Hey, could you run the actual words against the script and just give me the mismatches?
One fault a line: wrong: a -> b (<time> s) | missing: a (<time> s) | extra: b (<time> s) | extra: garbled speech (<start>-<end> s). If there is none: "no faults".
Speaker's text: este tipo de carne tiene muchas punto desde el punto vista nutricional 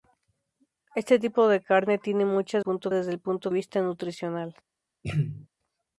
no faults